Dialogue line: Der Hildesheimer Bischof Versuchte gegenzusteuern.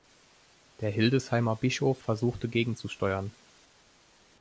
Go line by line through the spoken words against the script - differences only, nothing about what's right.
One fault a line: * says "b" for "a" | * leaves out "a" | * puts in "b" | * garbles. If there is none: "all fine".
all fine